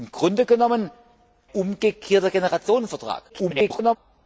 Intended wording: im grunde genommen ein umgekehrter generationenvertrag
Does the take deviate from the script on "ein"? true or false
true